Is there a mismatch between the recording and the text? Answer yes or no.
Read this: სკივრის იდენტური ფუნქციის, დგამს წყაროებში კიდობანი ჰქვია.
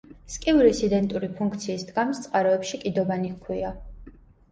no